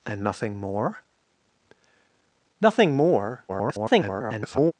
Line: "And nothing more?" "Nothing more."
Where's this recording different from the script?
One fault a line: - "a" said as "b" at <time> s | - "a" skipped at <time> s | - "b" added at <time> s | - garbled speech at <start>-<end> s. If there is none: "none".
- garbled speech at 3.5-4.7 s